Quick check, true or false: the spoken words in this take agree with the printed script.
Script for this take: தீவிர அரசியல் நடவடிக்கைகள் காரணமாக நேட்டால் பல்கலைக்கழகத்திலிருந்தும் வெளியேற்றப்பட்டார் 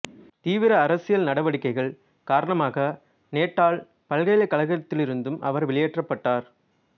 false